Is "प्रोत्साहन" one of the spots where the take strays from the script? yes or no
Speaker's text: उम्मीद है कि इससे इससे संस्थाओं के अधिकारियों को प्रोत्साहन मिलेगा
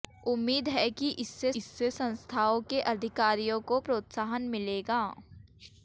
no